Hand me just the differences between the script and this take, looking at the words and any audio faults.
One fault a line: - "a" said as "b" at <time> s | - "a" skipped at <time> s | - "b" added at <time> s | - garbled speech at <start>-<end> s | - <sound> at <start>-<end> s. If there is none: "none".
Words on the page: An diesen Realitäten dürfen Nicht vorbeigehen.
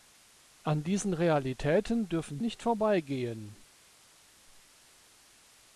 none